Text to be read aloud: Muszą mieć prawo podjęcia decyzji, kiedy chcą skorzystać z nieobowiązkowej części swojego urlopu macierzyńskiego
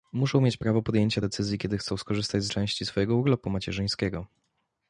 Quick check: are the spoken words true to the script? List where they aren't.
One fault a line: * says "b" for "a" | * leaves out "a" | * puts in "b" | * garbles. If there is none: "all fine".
* leaves out "nieobowiązkowej"